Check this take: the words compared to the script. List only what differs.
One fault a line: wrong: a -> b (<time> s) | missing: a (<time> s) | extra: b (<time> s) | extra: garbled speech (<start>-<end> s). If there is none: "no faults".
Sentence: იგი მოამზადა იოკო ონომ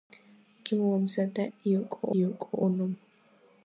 extra: იოკო (2.2 s)